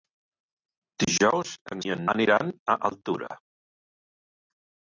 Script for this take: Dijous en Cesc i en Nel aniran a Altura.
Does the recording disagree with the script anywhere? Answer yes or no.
yes